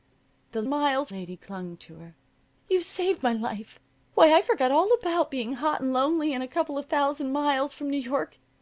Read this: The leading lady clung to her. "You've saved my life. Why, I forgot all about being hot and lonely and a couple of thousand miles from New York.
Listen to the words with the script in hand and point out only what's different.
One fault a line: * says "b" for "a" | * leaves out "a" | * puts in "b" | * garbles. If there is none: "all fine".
* says "miles" for "leading"